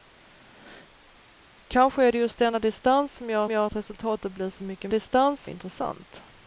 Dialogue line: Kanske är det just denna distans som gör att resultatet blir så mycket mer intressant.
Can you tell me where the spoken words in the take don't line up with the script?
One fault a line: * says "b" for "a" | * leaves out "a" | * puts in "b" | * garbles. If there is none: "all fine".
* puts in "gör"
* says "distans" for "mer"